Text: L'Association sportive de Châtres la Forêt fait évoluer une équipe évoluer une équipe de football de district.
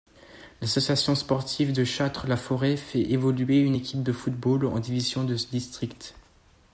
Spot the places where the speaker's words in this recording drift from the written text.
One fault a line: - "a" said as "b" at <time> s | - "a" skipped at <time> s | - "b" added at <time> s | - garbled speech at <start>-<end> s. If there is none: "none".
- "évoluer une équipe de football" said as "de football en division" at 4.0 s